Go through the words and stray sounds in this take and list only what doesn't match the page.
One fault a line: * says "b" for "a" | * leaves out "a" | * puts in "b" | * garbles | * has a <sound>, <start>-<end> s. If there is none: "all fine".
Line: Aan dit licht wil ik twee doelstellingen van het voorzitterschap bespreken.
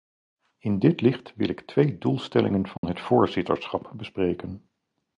* says "In" for "Aan"
* has a dropout, 2.8-2.8 s